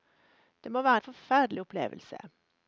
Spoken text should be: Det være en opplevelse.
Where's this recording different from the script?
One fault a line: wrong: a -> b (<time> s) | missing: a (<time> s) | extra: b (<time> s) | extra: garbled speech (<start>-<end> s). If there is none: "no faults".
extra: må (0.7 s)
extra: forferdelig (1.0 s)